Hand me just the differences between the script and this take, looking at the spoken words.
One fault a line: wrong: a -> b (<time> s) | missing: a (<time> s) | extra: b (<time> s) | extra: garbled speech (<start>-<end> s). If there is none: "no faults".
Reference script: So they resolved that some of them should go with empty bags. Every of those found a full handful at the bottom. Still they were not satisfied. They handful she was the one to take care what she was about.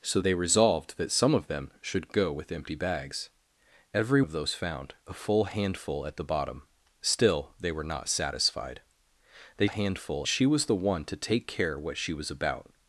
no faults